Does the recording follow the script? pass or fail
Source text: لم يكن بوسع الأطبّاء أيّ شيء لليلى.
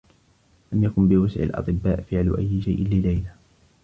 fail